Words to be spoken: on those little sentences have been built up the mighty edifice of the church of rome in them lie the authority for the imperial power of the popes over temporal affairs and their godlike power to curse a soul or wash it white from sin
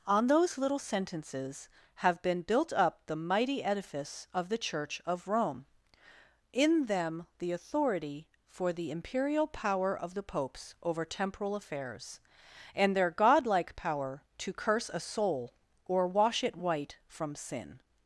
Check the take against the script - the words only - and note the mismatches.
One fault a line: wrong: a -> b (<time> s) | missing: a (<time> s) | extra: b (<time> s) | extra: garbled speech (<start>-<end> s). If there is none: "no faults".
missing: lie (7.3 s)